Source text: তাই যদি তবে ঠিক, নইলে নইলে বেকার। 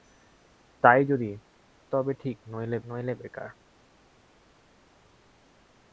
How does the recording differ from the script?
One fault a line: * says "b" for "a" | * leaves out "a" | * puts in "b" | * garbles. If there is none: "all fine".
all fine